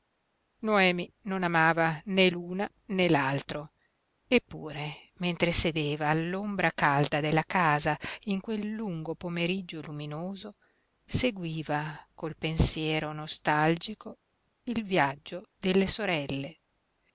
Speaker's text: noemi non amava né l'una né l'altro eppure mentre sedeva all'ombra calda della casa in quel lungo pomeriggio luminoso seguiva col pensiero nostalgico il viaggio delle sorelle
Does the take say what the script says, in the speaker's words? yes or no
yes